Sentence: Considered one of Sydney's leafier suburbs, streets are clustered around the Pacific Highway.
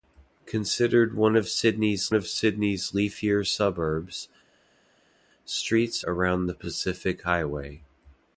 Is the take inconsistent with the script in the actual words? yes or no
yes